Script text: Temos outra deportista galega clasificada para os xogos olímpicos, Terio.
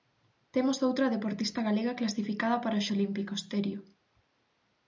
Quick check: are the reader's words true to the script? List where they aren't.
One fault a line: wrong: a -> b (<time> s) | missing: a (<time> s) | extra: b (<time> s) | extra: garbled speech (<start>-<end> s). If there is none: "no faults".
missing: xogos (2.9 s)